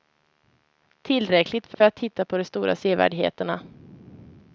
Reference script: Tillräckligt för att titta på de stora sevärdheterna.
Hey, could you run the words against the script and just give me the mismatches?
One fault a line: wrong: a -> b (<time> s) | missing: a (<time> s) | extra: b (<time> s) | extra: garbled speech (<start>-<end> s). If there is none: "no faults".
extra: för (1.7 s)